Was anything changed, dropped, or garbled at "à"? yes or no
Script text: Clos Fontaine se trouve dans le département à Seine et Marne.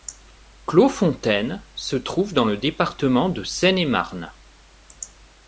yes